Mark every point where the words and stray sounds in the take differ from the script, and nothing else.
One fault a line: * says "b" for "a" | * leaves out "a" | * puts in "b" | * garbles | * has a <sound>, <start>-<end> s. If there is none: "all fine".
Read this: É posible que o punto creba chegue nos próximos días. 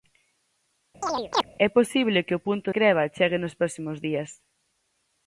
* has a chirp, 1.0-1.5 s